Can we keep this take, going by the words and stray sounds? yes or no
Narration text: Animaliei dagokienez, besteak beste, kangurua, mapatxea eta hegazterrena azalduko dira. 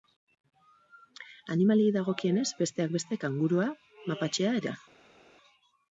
no